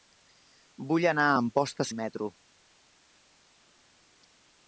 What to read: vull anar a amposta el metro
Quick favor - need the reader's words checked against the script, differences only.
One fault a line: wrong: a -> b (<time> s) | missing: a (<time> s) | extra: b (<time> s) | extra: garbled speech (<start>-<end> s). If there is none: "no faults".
no faults